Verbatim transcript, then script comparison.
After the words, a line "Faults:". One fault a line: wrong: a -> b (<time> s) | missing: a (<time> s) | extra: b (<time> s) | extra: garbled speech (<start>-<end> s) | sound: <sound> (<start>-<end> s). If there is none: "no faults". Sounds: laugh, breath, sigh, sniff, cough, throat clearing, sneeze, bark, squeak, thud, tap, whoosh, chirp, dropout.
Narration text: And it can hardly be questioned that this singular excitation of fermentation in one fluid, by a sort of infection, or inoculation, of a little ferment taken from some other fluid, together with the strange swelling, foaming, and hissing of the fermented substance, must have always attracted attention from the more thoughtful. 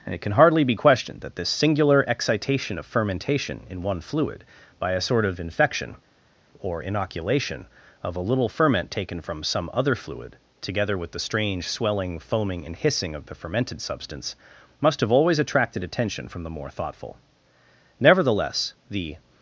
And it can hardly be questioned that this singular excitation of fermentation in one fluid, by a sort of infection, or inoculation, of a little ferment taken from some other fluid, together with the strange swelling, foaming, and hissing of the fermented substance, must have always attracted attention from the more thoughtful. Nevertheless, the
Faults:
extra: Nevertheless the (18.0 s)